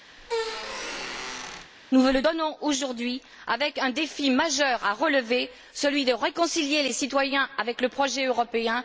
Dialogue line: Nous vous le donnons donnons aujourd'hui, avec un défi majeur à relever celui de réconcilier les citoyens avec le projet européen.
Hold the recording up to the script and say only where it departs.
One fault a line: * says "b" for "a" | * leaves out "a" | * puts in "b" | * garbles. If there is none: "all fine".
* leaves out "donnons"